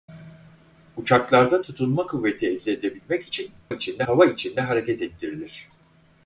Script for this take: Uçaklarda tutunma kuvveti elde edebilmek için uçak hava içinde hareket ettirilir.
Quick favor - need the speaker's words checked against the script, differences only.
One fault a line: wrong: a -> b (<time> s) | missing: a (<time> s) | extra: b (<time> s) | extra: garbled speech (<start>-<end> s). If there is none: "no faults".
wrong: uçak -> içinde (3.7 s)